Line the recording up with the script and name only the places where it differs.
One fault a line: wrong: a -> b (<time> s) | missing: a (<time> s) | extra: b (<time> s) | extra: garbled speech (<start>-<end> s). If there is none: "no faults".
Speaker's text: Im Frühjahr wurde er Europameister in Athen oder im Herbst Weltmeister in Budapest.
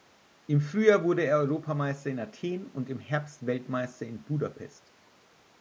wrong: oder -> und (2.6 s)